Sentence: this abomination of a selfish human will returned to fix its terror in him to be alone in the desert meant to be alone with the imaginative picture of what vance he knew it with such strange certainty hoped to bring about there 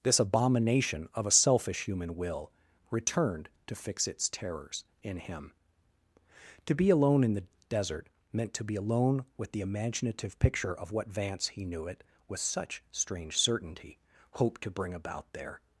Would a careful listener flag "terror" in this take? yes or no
yes